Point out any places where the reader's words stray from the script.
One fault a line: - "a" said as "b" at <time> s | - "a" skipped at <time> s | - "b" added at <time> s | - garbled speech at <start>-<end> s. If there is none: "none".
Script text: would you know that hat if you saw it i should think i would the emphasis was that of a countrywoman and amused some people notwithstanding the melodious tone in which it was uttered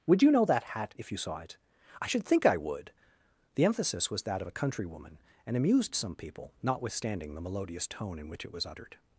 none